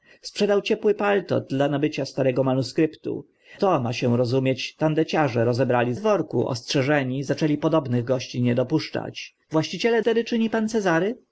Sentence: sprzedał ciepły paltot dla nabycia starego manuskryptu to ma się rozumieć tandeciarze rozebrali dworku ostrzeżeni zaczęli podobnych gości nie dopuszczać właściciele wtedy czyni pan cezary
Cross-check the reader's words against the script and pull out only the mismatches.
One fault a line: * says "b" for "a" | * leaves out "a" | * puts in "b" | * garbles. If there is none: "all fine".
all fine